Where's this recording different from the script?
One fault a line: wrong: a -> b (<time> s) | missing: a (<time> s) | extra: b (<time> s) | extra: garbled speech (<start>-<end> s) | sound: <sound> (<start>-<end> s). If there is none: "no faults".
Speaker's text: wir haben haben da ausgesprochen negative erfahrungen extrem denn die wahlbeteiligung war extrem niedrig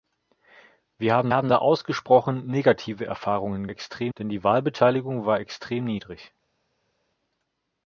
no faults